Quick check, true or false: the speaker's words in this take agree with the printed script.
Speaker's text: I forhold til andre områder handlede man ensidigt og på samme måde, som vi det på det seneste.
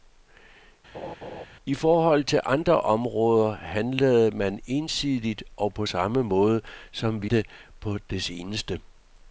true